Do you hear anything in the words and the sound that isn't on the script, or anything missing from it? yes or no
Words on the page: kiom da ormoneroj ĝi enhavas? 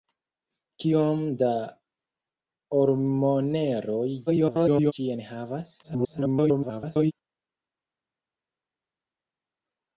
yes